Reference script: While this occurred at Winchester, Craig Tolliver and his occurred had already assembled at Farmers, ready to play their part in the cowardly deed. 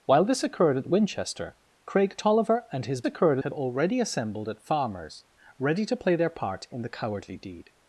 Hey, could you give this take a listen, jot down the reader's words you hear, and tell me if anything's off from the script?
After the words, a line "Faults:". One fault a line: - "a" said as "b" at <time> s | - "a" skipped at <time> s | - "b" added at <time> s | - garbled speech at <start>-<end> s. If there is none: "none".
While this occurred at Winchester, Craig Tolliver and his occurred had already assembled at Farmers, ready to play their part in the cowardly deed.
Faults:
none